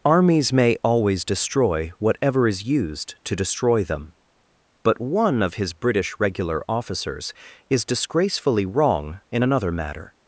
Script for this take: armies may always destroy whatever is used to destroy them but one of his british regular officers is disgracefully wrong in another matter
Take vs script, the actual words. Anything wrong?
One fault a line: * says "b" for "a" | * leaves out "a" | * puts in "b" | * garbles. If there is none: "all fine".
all fine